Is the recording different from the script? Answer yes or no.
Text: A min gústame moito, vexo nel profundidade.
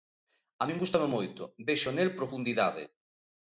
no